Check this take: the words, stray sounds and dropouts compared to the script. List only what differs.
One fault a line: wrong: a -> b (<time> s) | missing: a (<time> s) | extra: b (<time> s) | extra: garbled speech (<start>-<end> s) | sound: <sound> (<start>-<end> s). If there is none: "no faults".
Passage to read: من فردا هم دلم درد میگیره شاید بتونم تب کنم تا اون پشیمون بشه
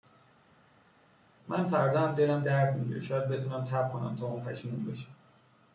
no faults